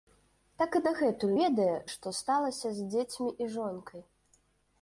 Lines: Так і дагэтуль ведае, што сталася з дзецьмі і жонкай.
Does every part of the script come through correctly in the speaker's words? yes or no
yes